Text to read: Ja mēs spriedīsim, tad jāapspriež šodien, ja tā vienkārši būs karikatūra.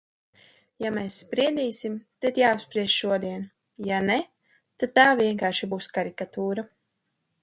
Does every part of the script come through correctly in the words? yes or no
no